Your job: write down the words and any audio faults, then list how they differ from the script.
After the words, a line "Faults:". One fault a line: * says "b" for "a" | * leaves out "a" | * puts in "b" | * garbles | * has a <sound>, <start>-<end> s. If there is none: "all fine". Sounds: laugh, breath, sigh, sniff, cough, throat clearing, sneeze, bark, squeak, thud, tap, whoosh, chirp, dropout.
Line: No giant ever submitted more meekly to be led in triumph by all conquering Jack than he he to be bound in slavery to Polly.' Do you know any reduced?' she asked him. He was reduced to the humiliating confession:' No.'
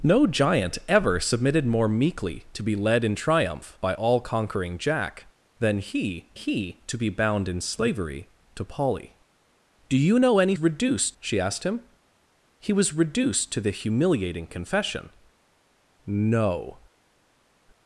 No giant ever submitted more meekly to be led in triumph by all conquering Jack than he he to be bound in slavery to Polly.' Do you know any reduced?' she asked him. He was reduced to the humiliating confession:' No.'
Faults:
all fine